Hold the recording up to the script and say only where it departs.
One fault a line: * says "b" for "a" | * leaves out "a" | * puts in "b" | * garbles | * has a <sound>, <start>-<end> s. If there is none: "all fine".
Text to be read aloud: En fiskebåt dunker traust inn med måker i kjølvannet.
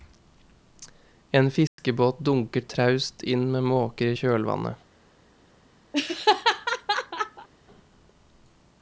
* has a dropout, 1.7-1.8 s
* has a laugh, 5.9-7.5 s